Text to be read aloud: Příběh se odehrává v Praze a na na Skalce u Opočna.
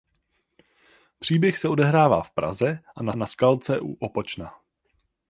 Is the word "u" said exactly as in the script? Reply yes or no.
yes